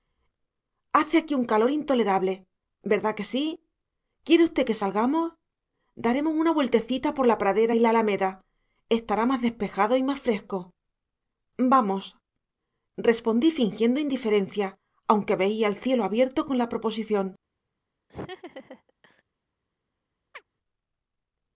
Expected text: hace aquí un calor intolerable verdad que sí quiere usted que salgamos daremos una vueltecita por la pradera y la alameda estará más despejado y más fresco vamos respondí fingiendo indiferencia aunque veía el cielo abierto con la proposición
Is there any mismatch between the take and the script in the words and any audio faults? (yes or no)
yes